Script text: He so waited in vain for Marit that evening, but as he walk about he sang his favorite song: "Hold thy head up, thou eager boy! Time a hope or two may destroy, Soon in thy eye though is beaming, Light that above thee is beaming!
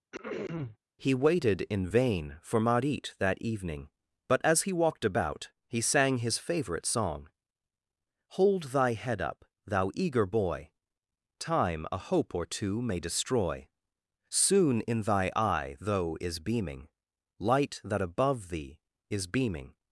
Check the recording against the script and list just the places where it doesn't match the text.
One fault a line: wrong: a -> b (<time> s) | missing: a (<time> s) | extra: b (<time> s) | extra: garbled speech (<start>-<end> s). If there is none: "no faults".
missing: so (1.1 s)
wrong: walk -> walked (4.7 s)